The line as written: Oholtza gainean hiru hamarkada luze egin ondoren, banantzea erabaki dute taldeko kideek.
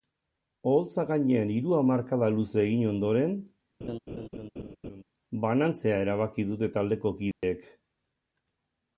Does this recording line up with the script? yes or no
yes